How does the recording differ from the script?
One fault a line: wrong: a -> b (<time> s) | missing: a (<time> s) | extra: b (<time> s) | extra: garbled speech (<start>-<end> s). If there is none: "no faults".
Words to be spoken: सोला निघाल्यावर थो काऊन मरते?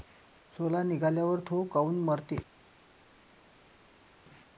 no faults